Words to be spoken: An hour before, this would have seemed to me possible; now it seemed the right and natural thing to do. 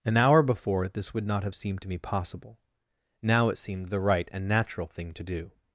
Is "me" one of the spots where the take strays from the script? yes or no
no